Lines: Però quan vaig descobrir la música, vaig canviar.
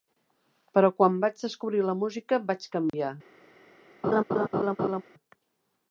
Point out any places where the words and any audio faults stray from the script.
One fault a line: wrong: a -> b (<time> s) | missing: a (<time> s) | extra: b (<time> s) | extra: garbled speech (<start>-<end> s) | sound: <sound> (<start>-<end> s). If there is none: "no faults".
sound: dropout (2.9-2.9 s)
sound: laugh (4.0-5.0 s)